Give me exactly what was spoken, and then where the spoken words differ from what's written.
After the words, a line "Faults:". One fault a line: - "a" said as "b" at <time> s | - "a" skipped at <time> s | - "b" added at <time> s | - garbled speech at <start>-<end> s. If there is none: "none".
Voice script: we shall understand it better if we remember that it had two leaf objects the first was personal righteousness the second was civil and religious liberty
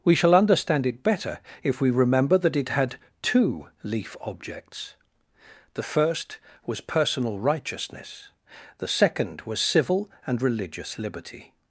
we shall understand it better if we remember that it had two leaf objects the first was personal righteousness the second was civil and religious liberty
Faults:
none